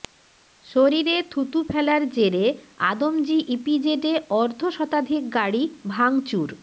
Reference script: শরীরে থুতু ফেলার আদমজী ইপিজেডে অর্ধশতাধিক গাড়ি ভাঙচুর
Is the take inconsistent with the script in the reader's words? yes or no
yes